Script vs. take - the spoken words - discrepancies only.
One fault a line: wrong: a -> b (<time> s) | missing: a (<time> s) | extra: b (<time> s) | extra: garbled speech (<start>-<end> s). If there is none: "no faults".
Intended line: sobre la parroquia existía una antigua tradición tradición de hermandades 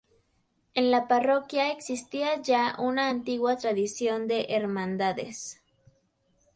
wrong: sobre -> en (0.7 s)
extra: ya (2.4 s)
missing: tradición (4.3 s)